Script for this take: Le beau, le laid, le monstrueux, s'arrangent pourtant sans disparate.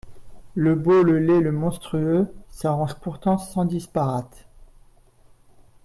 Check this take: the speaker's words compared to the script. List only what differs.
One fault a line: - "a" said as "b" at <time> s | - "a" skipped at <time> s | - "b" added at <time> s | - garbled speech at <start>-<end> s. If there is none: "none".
none